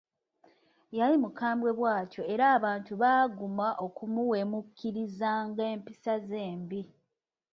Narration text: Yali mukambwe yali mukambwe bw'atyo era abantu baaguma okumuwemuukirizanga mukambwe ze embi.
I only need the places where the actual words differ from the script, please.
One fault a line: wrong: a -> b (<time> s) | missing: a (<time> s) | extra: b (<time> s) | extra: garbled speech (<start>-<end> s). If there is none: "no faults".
missing: yali mukambwe (1.7 s)
wrong: mukambwe -> empisa (5.7 s)